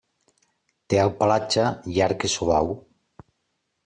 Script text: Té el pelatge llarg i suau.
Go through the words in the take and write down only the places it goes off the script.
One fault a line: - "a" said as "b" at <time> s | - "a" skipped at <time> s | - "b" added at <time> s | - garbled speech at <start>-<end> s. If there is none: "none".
none